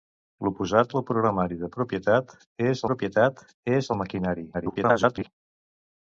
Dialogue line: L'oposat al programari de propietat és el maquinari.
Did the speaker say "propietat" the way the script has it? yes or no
yes